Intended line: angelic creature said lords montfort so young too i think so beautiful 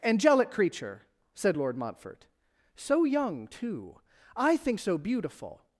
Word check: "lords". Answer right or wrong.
wrong